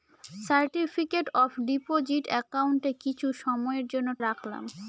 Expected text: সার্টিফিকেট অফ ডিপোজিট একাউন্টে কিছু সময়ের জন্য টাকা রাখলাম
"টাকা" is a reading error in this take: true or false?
true